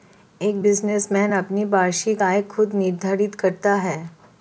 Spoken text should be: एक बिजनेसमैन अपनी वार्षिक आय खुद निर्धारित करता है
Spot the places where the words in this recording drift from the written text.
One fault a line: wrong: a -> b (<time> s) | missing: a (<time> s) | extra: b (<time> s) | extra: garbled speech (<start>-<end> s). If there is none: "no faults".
no faults